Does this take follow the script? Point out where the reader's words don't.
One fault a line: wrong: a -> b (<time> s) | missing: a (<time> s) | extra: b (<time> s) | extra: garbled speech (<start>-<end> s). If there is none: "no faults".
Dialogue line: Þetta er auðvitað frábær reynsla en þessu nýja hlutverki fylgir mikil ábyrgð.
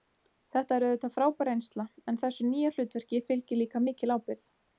extra: líka (3.6 s)